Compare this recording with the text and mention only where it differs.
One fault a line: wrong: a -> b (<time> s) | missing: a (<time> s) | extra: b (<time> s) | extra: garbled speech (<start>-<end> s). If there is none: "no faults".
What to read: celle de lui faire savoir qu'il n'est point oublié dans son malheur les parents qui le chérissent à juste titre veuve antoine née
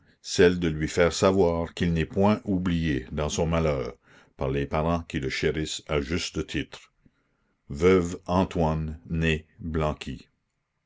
extra: par (4.4 s)